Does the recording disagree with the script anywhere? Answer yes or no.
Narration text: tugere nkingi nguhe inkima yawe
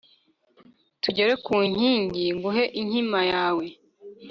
yes